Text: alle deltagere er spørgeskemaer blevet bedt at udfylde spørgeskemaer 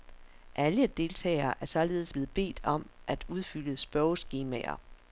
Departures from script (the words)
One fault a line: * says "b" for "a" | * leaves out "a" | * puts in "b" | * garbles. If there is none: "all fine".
* says "således" for "spørgeskemaer"
* puts in "om"